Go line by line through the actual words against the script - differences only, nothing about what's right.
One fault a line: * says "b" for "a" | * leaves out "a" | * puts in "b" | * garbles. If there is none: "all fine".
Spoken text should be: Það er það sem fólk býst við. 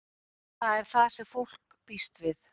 all fine